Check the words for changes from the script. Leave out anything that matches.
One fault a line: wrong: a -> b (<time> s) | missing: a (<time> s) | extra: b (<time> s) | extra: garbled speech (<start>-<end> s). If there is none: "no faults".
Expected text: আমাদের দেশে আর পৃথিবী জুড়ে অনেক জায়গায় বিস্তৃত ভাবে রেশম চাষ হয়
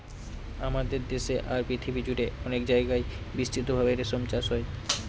no faults